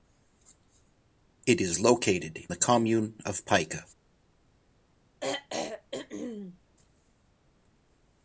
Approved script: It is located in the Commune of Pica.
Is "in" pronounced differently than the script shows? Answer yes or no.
yes